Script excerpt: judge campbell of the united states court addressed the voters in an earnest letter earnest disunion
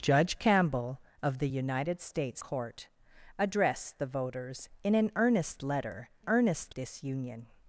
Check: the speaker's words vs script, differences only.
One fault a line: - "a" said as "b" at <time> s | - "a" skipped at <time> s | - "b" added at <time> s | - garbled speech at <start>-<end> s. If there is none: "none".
none